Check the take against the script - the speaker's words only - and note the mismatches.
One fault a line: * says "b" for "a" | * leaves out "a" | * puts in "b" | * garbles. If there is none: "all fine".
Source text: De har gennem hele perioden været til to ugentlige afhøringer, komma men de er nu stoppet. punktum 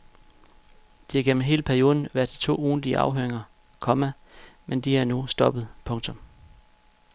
all fine